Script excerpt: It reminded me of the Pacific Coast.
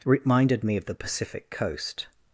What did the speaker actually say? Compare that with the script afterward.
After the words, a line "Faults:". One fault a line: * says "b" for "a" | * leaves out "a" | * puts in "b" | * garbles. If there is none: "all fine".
reminded me of the Pacific Coast.
Faults:
* leaves out "It"